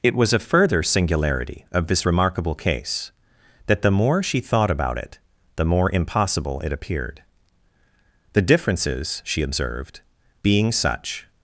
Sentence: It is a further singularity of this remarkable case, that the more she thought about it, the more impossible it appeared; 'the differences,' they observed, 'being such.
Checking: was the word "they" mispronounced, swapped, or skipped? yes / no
yes